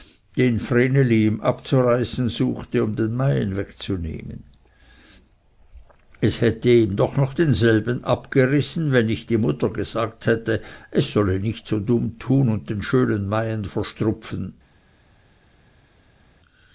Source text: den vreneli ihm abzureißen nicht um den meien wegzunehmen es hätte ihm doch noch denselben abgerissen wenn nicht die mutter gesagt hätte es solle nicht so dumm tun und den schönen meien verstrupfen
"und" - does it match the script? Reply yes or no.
yes